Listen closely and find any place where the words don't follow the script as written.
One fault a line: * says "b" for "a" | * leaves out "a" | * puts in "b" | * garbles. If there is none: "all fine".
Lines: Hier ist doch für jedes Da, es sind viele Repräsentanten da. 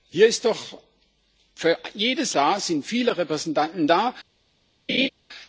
all fine